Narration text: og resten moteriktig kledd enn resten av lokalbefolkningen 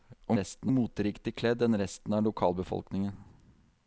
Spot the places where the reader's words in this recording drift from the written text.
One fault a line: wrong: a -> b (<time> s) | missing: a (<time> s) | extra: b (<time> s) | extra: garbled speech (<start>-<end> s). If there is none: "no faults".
no faults